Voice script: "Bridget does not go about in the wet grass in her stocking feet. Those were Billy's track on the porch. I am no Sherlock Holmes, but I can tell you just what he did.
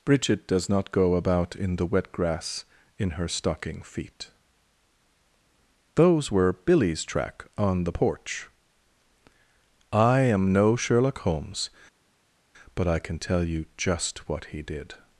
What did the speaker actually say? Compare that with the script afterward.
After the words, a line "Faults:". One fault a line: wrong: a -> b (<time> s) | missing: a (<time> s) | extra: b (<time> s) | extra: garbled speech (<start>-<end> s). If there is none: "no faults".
"Bridget does not go about in the wet grass in her stocking feet. Those were Billy's track on the porch. I am no Sherlock Holmes, but I can tell you just what he did.
Faults:
no faults